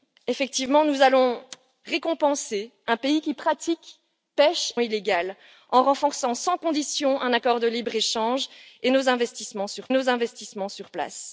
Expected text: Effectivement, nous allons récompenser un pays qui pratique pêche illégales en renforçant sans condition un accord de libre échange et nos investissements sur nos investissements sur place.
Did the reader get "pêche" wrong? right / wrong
right